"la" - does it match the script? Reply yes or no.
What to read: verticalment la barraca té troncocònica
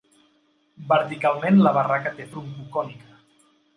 yes